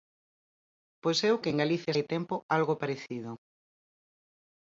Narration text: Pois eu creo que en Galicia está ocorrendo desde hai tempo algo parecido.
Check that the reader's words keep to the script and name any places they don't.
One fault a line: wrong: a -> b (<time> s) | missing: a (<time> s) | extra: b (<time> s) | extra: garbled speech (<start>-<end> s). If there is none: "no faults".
missing: creo (1.4 s)
missing: está ocorrendo desde (1.9 s)